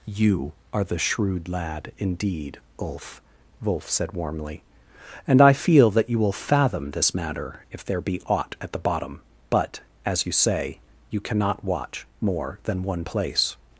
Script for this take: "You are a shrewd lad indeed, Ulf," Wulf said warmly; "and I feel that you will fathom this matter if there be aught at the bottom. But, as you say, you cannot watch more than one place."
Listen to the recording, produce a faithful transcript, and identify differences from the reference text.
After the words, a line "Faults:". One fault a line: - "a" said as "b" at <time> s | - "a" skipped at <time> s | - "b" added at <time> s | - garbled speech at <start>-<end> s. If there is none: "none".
"You are the shrewd lad indeed, Ulf," Wulf said warmly; "and I feel that you will fathom this matter if there be aught at the bottom. But, as you say, you cannot watch more than one place."
Faults:
- "a" said as "the" at 0.8 s